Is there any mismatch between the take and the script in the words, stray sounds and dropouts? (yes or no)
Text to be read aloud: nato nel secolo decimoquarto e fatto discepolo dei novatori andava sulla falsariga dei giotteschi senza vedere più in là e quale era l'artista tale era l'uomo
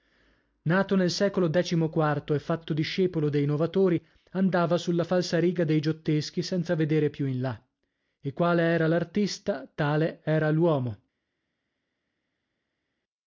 no